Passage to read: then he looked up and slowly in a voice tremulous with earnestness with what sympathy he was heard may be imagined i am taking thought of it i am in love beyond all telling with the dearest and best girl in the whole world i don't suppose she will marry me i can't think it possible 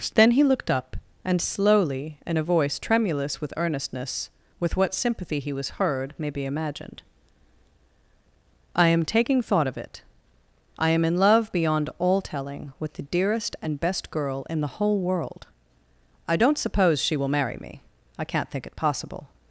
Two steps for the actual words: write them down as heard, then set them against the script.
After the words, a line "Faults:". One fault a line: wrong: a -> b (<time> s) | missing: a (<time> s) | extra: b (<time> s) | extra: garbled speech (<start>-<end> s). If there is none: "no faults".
then he looked up and slowly in a voice tremulous with earnestness with what sympathy he was heard may be imagined i am taking thought of it i am in love beyond all telling with the dearest and best girl in the whole world i don't suppose she will marry me i can't think it possible
Faults:
no faults